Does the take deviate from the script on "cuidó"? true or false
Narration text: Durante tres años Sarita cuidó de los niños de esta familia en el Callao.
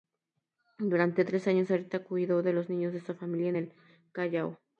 false